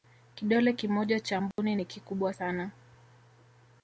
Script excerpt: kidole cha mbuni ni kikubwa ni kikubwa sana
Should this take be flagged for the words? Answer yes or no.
yes